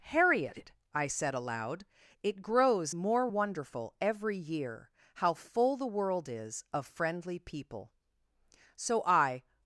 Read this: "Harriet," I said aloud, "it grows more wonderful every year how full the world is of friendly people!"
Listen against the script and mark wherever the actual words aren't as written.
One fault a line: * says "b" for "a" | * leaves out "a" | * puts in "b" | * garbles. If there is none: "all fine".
* puts in "So I"